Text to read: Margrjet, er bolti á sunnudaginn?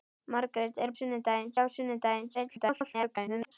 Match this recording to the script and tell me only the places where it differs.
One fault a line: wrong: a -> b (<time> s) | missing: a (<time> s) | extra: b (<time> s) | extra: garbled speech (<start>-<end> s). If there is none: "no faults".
wrong: bolti -> sunnudaginn (1.0 s)
extra: garbled speech (2.3-3.5 s)